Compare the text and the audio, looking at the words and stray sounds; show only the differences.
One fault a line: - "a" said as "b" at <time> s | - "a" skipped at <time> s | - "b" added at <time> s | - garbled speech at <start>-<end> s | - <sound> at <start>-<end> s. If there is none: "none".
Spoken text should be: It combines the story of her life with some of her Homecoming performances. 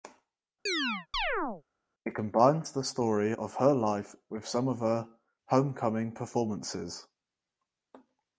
- chirp at 0.7-1.6 s